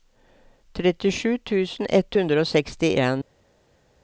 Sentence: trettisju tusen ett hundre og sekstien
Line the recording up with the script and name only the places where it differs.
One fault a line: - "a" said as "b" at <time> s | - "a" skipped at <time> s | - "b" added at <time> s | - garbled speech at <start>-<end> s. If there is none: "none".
none